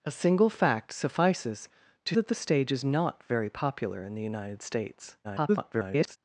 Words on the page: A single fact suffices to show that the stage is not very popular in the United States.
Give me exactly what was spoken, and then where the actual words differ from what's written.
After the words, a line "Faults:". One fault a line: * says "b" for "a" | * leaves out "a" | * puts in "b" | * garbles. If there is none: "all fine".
A single fact suffices to that the stage is not very popular in the United States. [garbled]
Faults:
* leaves out "show"
* garbles